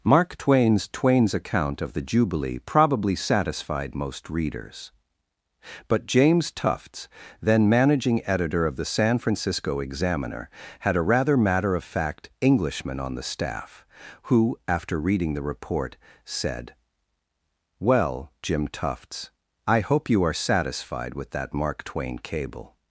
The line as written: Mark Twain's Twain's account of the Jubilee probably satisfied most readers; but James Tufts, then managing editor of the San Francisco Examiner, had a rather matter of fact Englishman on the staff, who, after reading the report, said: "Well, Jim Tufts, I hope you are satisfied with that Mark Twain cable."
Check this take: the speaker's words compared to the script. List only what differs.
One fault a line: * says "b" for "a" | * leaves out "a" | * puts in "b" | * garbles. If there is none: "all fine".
all fine